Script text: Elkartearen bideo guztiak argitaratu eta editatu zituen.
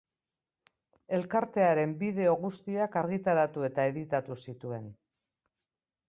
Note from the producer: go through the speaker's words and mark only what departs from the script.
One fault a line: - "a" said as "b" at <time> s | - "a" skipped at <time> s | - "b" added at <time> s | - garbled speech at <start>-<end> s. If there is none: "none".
none